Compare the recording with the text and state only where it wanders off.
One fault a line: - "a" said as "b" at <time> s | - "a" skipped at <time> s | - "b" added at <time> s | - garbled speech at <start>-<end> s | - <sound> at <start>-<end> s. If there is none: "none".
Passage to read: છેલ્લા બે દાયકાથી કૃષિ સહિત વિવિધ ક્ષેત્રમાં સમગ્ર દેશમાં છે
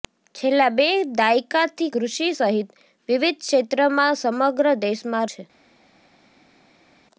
none